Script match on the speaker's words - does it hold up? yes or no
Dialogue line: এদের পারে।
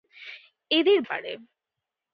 yes